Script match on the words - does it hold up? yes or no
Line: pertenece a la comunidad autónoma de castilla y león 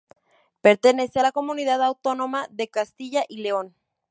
yes